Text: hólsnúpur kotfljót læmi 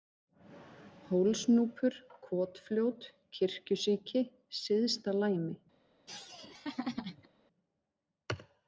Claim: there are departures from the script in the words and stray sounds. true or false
true